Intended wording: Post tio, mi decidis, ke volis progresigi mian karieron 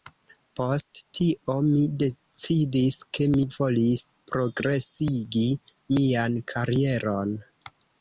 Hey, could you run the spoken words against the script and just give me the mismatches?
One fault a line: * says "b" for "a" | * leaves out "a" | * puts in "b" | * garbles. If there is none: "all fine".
* puts in "mi"